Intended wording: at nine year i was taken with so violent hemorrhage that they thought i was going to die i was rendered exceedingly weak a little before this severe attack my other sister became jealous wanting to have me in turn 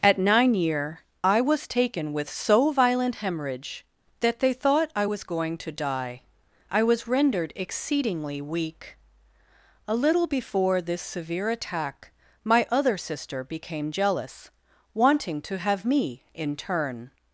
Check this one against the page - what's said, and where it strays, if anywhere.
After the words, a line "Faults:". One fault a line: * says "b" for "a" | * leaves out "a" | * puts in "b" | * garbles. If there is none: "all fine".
at nine year i was taken with so violent hemorrhage that they thought i was going to die i was rendered exceedingly weak a little before this severe attack my other sister became jealous wanting to have me in turn
Faults:
all fine